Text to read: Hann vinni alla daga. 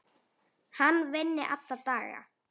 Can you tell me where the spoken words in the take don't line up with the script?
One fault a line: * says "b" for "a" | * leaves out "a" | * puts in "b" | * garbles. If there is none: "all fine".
all fine